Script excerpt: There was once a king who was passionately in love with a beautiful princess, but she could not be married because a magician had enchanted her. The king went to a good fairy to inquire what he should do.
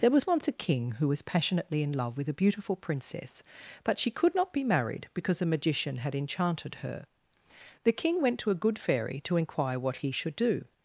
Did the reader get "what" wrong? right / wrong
right